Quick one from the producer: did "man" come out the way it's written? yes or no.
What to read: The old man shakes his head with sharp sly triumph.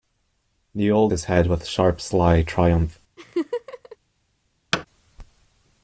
no